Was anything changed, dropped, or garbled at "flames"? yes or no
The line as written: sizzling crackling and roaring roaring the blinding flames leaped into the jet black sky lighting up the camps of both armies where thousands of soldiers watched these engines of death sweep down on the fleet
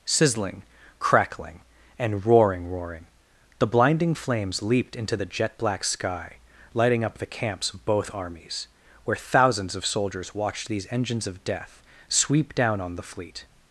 no